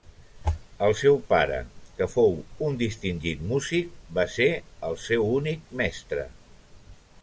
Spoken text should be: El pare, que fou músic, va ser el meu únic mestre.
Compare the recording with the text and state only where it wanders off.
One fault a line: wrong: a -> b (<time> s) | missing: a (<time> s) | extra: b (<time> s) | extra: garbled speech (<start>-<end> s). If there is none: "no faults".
extra: seu (1.0 s)
extra: un distingit (2.7 s)
wrong: meu -> seu (5.1 s)